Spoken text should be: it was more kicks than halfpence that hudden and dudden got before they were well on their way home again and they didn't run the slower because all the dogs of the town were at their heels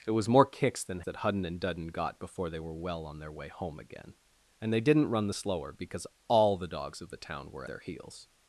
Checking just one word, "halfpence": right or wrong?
wrong